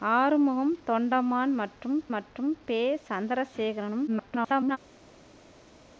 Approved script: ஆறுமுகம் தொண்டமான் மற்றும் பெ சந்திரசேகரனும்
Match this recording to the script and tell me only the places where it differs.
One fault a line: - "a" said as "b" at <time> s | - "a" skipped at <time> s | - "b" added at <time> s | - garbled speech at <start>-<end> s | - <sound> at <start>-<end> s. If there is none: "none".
- "மற்றும்" added at 2.1 s
- garbled speech at 4.1-4.8 s